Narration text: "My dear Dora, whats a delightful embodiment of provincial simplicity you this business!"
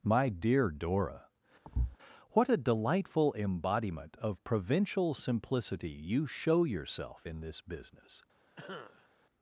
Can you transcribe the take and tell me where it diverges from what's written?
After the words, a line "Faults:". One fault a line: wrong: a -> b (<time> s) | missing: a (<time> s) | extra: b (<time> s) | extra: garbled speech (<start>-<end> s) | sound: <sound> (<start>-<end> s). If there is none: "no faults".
"My dear Dora, what a delightful embodiment of provincial simplicity you show yourself in this business!"
Faults:
sound: thud (1.6-2.0 s)
wrong: whats -> what (2.3 s)
extra: show yourself in (6.3 s)
sound: cough (8.6-9.1 s)